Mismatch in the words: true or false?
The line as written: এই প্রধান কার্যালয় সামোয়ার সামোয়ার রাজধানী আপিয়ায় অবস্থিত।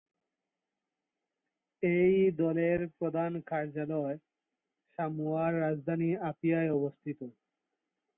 true